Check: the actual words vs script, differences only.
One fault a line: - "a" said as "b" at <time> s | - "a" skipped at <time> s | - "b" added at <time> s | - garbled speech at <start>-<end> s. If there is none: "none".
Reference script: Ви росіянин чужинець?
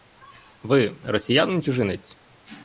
none